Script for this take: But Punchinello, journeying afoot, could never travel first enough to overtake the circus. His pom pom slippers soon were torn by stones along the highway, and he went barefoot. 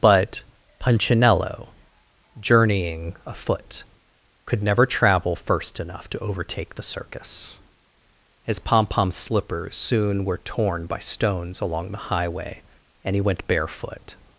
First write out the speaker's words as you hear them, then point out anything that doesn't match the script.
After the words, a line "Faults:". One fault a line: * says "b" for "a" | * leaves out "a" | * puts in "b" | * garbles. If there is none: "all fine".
But Punchinello, journeying afoot, could never travel first enough to overtake the circus. His pom pom slippers soon were torn by stones along the highway, and he went barefoot.
Faults:
all fine